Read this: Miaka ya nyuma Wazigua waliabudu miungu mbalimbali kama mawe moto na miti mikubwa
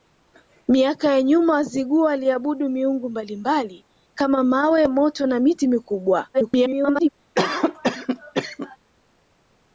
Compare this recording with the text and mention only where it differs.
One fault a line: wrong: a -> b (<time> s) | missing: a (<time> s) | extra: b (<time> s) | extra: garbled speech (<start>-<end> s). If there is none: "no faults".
extra: garbled speech (6.3-7.1 s)